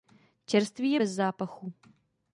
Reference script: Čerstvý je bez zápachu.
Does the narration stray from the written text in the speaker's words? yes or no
no